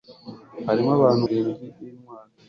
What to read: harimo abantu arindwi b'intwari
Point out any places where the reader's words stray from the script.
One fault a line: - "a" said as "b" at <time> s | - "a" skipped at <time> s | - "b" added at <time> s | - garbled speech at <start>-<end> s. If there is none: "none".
none